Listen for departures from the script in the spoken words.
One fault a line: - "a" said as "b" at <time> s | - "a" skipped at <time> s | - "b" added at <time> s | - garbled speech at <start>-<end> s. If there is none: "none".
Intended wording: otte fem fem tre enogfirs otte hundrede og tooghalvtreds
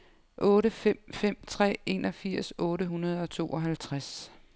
none